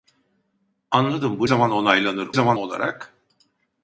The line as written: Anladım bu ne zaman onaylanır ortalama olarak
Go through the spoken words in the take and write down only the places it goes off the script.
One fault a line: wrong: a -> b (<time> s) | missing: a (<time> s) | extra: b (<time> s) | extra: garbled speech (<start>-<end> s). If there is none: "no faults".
missing: ne (1.5 s)
wrong: ortalama -> zaman (2.3 s)